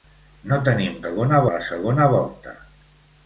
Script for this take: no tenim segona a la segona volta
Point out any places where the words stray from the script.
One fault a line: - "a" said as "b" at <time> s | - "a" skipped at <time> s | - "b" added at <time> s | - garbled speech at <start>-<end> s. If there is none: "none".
none